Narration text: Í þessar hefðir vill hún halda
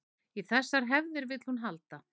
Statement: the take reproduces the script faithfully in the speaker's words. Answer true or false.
true